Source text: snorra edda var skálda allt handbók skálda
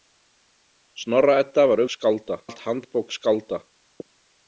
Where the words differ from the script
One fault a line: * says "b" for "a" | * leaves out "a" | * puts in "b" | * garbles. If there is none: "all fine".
all fine